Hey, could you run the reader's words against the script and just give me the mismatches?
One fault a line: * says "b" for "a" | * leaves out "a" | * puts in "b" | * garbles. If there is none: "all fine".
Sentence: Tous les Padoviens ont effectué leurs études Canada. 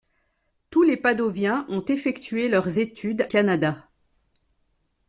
all fine